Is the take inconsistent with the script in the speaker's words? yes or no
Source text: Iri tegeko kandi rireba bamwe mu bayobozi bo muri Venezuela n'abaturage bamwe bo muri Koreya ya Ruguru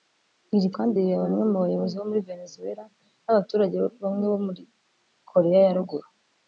yes